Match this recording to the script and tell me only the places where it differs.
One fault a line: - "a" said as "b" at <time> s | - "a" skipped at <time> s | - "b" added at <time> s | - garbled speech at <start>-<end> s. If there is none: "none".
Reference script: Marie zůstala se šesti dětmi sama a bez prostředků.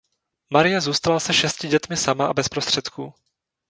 none